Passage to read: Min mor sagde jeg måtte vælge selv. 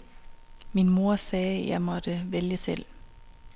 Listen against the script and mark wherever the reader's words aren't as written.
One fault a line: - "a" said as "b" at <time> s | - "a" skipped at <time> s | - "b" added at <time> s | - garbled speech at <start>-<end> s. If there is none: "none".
none